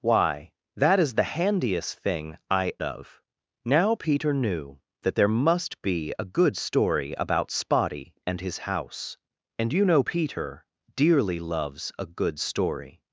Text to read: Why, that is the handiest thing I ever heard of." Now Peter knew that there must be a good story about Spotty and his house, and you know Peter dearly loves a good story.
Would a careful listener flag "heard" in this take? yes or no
yes